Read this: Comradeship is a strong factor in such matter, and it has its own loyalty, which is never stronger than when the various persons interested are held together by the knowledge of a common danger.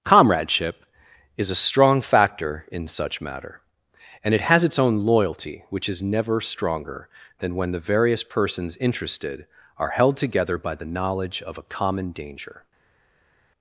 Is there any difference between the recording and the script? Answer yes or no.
no